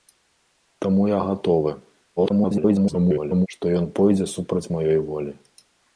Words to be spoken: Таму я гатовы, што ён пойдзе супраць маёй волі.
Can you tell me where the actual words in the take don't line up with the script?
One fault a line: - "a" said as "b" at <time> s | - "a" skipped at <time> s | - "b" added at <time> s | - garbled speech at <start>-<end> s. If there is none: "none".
- garbled speech at 2.2-3.5 s